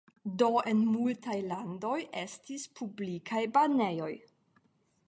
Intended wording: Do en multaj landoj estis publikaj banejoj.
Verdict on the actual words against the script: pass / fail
pass